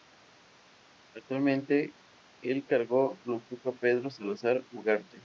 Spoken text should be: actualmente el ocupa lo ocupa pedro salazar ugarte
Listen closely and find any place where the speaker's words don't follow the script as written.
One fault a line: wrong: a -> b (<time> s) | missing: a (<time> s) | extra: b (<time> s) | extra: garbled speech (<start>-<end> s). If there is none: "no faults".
wrong: ocupa -> cargo (2.6 s)